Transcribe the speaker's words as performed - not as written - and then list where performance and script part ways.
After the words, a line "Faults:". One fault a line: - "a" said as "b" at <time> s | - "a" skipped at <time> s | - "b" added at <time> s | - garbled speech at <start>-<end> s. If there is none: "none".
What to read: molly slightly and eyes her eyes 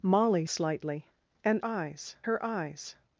molly slightly and eyes her eyes
Faults:
none